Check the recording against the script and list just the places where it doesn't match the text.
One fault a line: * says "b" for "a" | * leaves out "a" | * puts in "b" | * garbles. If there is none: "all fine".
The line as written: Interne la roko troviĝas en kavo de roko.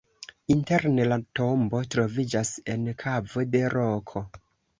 * says "tombo" for "roko"